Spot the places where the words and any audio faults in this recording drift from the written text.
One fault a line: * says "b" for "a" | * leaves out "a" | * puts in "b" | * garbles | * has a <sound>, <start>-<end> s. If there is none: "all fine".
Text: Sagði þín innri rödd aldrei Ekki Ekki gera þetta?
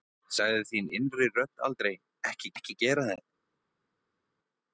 all fine